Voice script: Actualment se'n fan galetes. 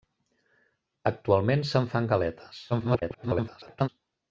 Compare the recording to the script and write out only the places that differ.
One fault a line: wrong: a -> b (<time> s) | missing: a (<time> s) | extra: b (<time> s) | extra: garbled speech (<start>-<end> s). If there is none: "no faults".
extra: garbled speech (2.7-3.9 s)